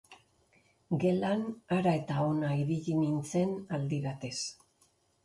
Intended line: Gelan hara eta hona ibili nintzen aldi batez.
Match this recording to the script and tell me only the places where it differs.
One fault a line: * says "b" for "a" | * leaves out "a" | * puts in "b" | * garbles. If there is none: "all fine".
all fine